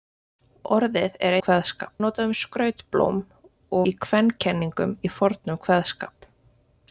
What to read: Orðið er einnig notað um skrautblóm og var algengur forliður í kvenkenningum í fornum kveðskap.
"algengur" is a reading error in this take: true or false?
true